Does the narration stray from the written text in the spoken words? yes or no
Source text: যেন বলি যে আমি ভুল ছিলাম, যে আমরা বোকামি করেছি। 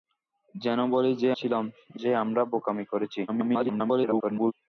yes